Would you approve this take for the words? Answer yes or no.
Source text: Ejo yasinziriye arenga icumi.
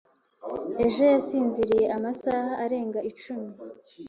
no